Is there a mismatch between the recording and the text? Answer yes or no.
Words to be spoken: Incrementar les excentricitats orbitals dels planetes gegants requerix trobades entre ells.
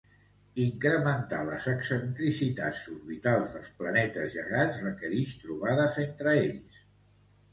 no